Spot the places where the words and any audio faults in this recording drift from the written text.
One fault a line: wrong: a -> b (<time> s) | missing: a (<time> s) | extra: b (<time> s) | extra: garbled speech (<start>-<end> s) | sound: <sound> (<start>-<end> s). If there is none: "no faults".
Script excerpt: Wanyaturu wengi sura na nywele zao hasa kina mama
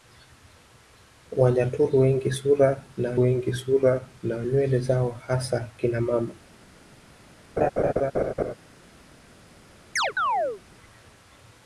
extra: wengi sura na (3.2 s)
sound: laugh (7.6-8.5 s)
sound: chirp (10.0-10.6 s)